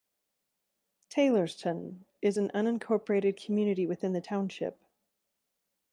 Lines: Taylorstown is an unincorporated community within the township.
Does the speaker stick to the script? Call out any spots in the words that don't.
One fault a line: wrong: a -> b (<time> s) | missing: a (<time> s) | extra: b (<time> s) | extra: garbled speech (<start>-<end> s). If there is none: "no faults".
no faults